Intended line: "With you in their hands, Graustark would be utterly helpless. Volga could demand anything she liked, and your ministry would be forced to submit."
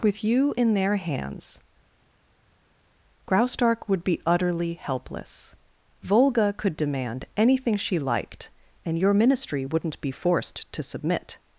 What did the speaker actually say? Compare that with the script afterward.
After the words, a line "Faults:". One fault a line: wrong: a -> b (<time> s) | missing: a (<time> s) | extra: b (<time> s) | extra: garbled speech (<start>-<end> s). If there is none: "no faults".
"With you in their hands, Graustark would be utterly helpless. Volga could demand anything she liked, and your ministry wouldn't be forced to submit."
Faults:
wrong: would -> wouldn't (9.6 s)